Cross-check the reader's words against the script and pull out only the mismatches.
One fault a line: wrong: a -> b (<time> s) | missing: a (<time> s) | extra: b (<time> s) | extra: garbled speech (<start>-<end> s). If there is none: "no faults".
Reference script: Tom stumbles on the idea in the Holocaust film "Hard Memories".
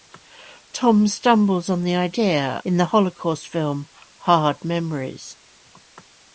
no faults